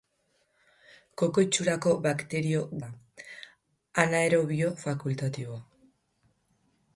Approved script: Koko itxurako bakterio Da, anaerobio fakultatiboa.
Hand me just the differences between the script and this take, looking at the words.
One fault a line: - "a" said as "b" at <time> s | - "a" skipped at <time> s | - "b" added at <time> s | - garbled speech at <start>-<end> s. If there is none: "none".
none